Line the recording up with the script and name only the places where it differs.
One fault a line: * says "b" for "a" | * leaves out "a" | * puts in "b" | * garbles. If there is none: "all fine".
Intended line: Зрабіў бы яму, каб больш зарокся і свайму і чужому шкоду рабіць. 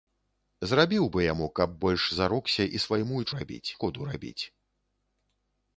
* says "рабіць" for "чужому"